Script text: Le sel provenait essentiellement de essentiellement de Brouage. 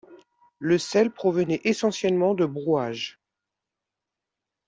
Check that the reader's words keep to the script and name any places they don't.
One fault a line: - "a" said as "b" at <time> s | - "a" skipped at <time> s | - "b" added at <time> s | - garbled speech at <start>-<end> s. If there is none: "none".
- "essentiellement de" skipped at 2.4 s